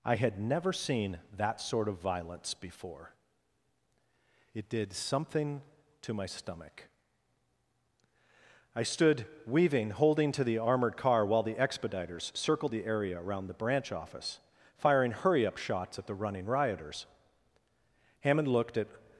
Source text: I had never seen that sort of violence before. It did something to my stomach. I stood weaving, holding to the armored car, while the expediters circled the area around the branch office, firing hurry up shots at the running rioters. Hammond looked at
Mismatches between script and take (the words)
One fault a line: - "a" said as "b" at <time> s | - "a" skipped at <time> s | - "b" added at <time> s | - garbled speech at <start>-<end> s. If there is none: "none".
none